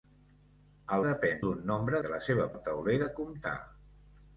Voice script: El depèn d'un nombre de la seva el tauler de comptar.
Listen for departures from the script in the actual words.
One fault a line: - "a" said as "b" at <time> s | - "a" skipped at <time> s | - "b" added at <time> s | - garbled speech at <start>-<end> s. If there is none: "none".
none